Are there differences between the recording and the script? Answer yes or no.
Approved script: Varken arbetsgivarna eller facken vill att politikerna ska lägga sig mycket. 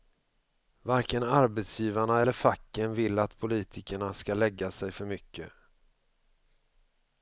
yes